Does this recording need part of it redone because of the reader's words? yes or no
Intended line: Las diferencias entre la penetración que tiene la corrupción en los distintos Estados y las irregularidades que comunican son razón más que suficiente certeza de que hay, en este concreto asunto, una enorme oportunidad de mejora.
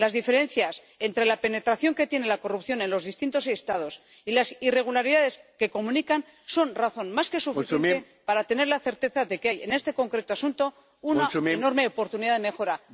yes